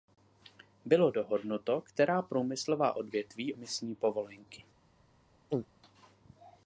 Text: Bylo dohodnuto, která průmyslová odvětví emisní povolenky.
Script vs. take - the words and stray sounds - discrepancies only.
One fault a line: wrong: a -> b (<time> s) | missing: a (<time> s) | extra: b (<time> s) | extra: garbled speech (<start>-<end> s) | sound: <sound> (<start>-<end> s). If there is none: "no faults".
sound: throat clearing (5.5-5.7 s)